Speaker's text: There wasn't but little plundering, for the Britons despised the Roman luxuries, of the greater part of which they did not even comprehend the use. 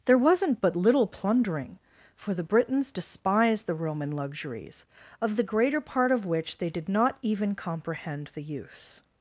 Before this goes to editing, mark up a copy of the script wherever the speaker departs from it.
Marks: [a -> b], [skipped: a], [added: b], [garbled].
There wasn't but little plundering, for the Britons despised the Roman luxuries, of the greater part of which they did not even comprehend the use.